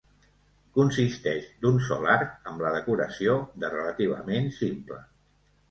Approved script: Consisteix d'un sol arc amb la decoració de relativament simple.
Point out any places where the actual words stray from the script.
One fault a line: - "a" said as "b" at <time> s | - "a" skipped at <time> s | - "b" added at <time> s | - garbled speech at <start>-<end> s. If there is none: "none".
none